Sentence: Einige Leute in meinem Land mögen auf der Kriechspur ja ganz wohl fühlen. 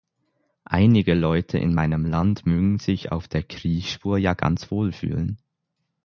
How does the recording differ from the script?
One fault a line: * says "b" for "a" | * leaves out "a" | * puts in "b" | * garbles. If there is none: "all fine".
* puts in "sich"